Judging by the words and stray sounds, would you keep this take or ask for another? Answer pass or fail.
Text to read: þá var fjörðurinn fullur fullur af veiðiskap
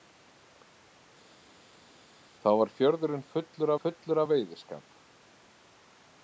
pass